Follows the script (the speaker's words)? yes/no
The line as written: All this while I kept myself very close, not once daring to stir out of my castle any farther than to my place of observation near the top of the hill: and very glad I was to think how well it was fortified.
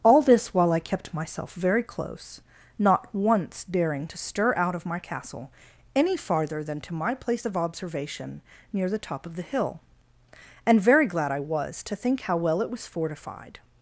yes